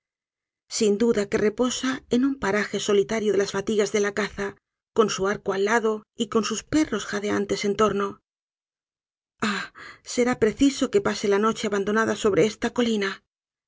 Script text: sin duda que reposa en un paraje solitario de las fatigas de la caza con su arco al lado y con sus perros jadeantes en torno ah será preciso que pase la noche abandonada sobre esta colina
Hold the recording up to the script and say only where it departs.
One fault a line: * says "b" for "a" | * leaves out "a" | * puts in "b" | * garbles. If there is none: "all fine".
all fine